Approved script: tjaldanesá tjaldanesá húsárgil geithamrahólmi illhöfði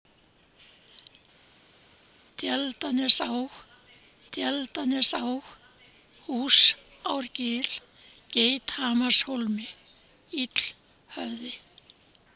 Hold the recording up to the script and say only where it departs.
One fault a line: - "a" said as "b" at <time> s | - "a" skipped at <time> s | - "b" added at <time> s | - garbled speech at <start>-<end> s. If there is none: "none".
none